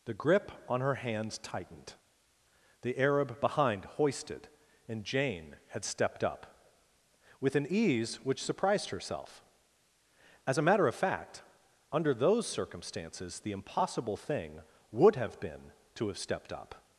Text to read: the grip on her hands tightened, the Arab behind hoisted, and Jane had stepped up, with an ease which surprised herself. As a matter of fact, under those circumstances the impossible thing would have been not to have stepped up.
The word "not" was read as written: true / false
false